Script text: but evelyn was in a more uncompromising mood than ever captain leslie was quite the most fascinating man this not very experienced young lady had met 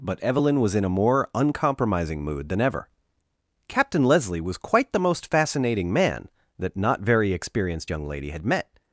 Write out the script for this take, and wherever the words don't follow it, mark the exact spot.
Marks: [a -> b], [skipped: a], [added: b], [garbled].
but evelyn was in a more uncompromising mood than ever captain leslie was quite the most fascinating man [this -> that] not very experienced young lady had met